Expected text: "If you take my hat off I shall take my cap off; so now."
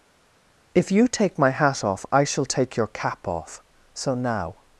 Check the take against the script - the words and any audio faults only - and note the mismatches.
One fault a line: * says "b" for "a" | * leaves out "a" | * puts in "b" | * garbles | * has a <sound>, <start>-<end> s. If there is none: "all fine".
* says "your" for "my"